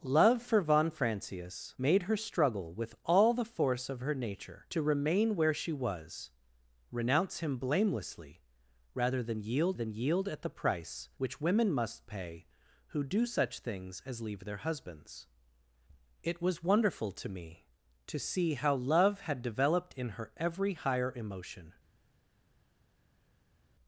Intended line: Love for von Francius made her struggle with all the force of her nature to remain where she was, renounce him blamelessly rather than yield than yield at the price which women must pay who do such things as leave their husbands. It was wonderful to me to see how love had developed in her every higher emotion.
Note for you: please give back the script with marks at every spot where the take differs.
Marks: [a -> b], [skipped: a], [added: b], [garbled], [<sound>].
Love for von Francius made her struggle with all the force of her nature to remain where she was, renounce him blamelessly rather than yield than yield at the price which women must pay who do such things as leave their husbands. It was wonderful to me to see how love had developed in her every higher emotion.